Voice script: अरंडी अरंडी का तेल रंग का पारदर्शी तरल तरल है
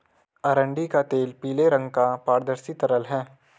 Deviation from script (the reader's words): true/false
true